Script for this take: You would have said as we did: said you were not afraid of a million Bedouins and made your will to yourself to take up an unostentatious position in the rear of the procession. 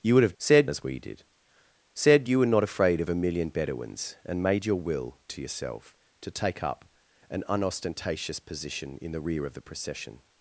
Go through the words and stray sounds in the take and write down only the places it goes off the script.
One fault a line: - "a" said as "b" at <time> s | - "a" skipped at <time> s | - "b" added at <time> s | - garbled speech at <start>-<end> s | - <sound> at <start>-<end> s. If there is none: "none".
none